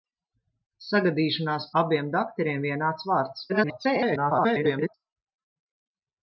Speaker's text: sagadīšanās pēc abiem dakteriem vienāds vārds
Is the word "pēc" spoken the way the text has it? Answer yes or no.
no